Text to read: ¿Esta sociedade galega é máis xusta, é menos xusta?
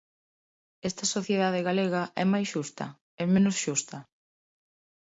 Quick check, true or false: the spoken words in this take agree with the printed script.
true